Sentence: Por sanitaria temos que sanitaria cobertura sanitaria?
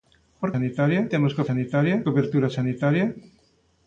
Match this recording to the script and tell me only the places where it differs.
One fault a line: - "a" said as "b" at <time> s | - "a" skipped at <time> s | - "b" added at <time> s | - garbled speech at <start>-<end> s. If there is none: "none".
none